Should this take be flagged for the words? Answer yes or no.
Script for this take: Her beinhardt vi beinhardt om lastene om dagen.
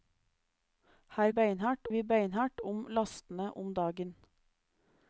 no